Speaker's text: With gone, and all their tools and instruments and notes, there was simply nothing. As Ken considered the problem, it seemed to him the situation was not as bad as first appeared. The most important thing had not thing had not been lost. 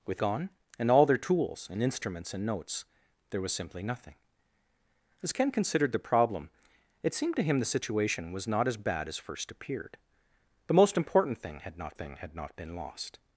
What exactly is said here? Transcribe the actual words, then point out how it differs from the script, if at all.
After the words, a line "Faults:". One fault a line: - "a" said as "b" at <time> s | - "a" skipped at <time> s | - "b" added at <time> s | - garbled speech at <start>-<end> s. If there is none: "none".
With gone, and all their tools and instruments and notes, there was simply nothing. As Ken considered the problem, it seemed to him the situation was not as bad as first appeared. The most important thing had not thing had not been lost.
Faults:
none